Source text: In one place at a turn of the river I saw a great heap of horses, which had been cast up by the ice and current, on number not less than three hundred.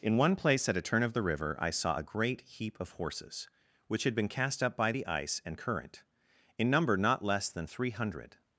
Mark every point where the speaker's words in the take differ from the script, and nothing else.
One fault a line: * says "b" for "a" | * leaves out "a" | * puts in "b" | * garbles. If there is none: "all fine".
* says "in" for "on"